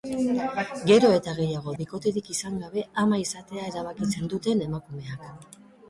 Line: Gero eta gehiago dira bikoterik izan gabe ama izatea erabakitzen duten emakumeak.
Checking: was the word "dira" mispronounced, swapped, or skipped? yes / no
yes